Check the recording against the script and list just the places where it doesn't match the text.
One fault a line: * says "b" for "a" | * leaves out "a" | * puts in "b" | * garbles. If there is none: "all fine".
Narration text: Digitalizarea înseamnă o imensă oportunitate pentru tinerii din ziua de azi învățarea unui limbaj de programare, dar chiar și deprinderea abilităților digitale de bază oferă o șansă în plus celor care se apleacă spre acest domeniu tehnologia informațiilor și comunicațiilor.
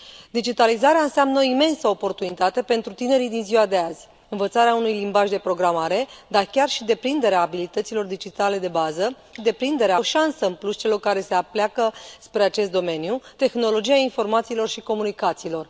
* says "deprinderea" for "oferă"